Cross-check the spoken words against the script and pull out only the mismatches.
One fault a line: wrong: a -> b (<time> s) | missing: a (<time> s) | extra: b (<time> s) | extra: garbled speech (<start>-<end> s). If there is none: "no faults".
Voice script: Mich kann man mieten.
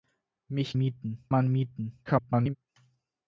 wrong: kann -> mieten (0.7 s)
extra: garbled speech (2.1-2.6 s)